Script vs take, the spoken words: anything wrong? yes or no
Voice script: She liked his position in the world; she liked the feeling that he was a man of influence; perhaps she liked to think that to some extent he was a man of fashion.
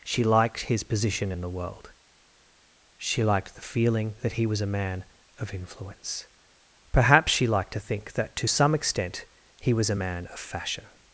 no